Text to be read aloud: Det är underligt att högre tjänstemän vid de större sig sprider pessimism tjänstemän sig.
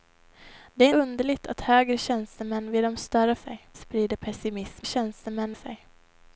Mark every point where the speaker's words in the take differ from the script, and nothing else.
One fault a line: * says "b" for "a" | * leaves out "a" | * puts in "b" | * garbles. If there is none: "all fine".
all fine